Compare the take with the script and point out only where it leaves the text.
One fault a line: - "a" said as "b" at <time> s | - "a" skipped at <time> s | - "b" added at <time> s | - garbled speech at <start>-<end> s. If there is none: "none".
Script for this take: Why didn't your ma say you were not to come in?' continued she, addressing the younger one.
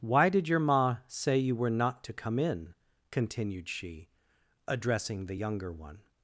- "didn't" said as "did" at 0.3 s